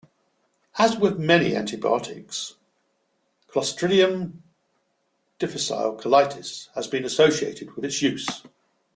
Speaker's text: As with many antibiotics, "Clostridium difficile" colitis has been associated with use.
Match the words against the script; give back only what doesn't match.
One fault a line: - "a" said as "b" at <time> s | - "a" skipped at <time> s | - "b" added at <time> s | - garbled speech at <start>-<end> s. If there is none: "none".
- "its" added at 7.8 s